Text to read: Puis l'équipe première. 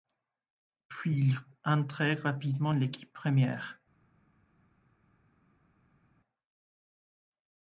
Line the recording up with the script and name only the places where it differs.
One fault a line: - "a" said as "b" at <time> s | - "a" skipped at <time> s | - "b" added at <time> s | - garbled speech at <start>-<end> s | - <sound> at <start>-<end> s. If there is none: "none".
- "il intègre rapidement" added at 1.2 s